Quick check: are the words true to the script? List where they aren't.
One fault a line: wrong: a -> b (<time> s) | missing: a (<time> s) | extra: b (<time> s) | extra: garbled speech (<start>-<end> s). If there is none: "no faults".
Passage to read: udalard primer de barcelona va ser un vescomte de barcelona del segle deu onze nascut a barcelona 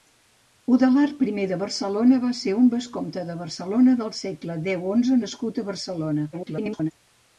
extra: garbled speech (6.3-6.9 s)